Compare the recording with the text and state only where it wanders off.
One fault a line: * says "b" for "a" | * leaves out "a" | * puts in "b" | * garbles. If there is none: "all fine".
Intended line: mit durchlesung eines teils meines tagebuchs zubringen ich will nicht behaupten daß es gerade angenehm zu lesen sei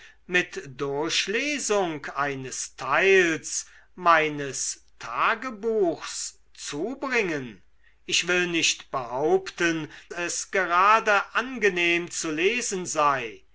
* leaves out "daß"